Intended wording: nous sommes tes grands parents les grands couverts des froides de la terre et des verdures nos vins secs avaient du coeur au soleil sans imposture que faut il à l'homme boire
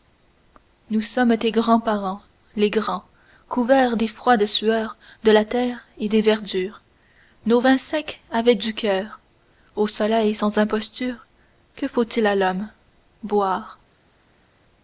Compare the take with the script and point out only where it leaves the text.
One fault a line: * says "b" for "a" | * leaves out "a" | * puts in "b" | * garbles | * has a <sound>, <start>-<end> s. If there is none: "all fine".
* puts in "sueurs"